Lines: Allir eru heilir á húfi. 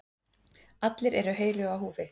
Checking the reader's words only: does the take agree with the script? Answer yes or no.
yes